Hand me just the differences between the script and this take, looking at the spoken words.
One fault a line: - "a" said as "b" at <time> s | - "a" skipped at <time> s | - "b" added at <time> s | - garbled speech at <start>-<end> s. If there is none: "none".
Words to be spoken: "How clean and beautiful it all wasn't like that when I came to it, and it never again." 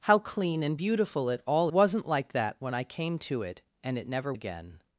none